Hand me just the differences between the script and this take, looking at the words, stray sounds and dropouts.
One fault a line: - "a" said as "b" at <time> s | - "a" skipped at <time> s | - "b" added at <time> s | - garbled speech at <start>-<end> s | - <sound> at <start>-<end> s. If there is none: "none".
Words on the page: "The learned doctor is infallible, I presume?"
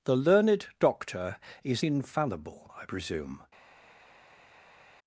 none